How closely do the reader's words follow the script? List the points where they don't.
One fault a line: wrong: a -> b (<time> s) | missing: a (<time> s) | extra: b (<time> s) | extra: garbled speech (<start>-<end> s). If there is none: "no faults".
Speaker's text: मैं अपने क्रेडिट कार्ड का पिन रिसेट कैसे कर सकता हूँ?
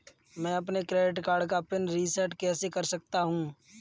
no faults